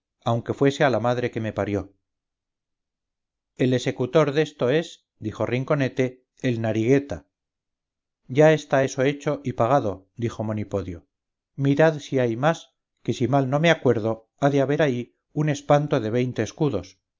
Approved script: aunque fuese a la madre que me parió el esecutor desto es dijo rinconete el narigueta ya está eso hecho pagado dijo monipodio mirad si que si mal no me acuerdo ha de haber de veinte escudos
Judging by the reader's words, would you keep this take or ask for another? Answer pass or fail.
fail